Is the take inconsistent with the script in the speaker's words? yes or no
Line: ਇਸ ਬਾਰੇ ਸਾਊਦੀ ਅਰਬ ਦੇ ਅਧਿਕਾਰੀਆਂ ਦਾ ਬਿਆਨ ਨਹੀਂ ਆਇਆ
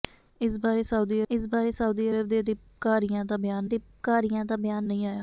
yes